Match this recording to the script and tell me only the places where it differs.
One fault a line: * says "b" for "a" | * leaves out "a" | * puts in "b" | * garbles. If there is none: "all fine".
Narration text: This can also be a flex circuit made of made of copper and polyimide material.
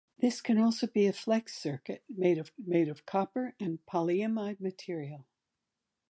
all fine